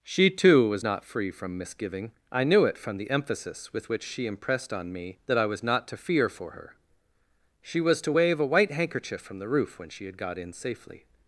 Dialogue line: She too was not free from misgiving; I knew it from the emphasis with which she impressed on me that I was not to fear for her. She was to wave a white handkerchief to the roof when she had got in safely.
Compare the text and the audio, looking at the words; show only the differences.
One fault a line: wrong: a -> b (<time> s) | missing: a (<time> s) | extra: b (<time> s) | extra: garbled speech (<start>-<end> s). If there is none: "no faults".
wrong: to -> from (9.2 s)